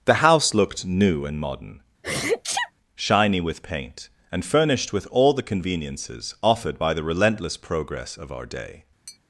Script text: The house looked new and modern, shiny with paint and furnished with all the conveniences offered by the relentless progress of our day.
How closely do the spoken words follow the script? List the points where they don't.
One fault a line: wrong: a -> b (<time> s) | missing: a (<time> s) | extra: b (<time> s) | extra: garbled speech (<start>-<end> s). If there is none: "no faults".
no faults